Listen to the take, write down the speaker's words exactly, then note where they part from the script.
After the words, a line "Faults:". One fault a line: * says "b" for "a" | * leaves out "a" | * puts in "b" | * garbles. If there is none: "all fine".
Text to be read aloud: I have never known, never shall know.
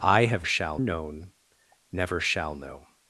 I have shall known, never shall know.
Faults:
* says "shall" for "never"